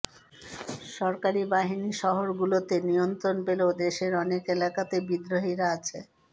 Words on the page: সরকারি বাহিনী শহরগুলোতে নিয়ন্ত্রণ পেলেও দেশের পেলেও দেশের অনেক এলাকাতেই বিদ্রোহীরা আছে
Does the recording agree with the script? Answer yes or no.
no